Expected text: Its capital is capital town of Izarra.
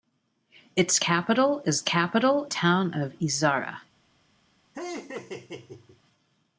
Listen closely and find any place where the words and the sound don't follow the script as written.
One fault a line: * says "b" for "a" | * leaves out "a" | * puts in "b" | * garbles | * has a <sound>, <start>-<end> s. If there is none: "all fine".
* has a laugh, 4.7-6.0 s